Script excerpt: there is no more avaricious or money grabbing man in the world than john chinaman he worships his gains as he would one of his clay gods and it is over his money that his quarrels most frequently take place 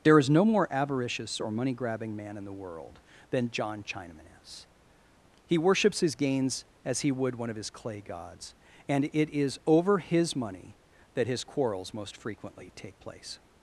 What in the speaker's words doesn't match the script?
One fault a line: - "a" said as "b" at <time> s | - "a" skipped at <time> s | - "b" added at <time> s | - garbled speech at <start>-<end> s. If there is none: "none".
- "is" added at 4.4 s